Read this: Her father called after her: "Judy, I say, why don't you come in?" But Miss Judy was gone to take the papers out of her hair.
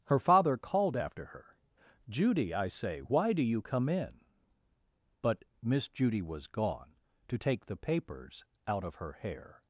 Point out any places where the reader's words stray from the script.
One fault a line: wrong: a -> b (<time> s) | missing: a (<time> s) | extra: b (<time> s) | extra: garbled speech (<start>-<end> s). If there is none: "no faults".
wrong: don't -> do (3.3 s)